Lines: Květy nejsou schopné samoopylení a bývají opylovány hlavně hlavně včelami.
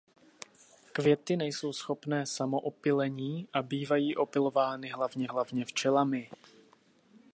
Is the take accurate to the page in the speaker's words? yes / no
yes